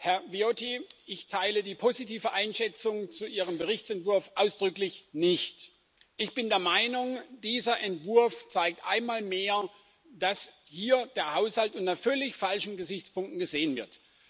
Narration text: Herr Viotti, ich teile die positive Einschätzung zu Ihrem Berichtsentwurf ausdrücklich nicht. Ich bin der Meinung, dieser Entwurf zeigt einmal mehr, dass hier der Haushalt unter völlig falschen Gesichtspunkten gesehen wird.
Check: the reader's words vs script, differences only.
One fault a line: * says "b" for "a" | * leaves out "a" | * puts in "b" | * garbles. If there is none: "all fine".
all fine